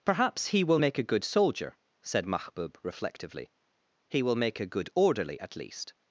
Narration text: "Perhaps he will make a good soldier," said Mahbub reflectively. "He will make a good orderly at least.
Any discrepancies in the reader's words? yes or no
no